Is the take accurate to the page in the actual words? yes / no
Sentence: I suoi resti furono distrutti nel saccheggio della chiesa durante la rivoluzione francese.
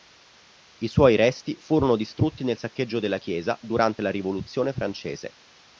yes